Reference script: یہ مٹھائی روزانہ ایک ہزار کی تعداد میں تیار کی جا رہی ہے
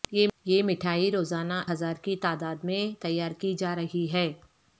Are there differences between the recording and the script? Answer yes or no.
yes